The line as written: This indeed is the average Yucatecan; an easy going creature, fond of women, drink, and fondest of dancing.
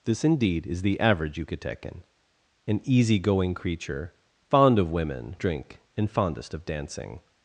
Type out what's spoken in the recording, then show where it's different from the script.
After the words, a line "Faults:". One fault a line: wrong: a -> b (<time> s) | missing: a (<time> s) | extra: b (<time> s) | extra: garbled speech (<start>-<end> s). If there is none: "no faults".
This indeed is the average Yucatecan; an easy going creature, fond of women, drink, and fondest of dancing.
Faults:
no faults